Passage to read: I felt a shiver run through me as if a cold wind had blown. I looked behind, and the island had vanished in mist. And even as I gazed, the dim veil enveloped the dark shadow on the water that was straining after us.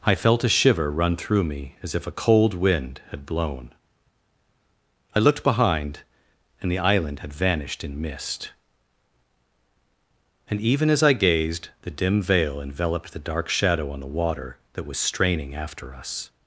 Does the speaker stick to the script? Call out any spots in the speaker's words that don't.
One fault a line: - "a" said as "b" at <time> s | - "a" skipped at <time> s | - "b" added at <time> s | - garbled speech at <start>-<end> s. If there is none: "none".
none